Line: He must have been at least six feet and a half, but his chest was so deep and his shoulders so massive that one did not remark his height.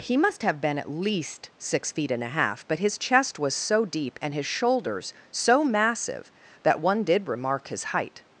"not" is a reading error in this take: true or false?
true